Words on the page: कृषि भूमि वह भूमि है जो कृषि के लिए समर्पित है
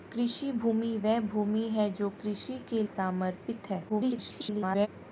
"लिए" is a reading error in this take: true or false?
true